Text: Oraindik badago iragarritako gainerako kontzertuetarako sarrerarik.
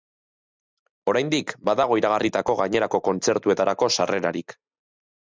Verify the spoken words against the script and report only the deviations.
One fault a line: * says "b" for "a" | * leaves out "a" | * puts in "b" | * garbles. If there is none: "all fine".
all fine